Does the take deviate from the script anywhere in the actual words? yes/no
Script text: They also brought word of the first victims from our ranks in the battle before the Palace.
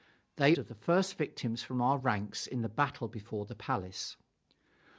yes